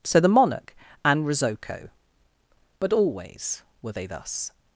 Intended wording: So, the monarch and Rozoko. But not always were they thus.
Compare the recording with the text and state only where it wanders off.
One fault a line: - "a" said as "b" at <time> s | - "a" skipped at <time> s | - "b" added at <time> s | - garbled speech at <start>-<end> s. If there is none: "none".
- "not" skipped at 2.9 s